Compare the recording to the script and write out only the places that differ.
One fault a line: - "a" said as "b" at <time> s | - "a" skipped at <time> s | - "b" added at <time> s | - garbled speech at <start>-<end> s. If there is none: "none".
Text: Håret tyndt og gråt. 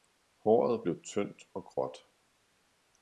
- "blev" added at 0.8 s